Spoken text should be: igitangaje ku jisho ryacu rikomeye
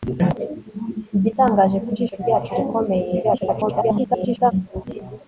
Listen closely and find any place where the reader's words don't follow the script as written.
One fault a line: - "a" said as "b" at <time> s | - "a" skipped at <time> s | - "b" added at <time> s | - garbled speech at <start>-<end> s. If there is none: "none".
- garbled speech at 3.2-4.5 s